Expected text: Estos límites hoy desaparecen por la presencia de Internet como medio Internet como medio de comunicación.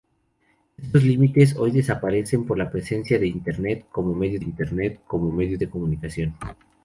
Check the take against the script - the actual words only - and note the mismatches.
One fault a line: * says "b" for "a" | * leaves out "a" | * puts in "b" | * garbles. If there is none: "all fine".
all fine